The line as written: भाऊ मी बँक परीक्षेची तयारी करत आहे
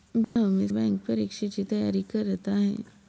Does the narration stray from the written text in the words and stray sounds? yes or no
yes